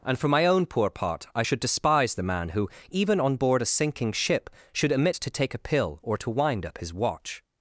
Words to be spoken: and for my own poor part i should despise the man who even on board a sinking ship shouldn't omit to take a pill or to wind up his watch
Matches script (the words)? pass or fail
fail